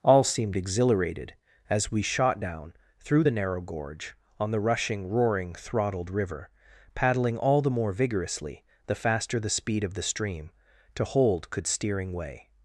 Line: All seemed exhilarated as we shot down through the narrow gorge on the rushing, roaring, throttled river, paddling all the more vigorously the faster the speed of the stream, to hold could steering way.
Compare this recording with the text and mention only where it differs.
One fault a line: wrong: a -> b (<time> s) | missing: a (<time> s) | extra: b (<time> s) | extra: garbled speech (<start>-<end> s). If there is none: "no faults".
no faults